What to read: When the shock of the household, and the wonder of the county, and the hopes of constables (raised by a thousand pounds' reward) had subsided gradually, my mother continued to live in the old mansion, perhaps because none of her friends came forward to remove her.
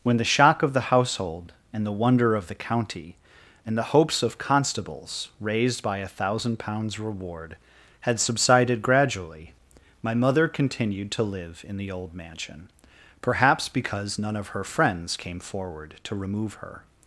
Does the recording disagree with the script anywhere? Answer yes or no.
no